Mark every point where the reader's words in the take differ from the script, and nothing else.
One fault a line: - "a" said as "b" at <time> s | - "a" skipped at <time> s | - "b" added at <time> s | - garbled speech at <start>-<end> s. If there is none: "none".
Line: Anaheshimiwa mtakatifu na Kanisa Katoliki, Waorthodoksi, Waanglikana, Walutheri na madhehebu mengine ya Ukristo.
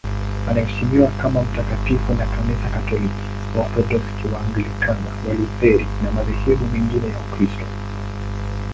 - "kama" added at 1.2 s